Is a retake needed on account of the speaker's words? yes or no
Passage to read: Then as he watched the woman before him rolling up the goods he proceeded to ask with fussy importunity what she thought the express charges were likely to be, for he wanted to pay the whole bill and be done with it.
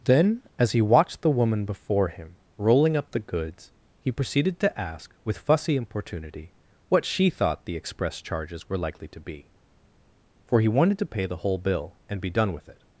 no